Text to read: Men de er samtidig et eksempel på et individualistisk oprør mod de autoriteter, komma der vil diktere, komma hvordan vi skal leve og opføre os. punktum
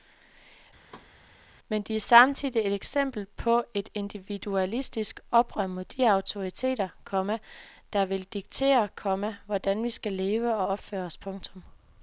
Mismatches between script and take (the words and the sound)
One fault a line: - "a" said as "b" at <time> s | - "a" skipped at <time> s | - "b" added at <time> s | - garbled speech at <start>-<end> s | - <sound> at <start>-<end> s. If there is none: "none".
- thud at 0.9-1.1 s